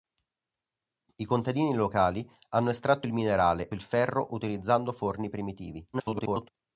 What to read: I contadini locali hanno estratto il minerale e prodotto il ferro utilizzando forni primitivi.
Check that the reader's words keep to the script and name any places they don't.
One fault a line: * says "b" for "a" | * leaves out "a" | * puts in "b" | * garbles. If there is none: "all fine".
* leaves out "e prodotto"
* garbles